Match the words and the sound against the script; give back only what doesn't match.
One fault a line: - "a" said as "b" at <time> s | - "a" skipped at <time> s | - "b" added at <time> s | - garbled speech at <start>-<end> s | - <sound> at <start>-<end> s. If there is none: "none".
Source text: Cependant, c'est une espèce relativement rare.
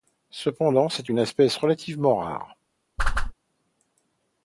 - whoosh at 3.0-3.3 s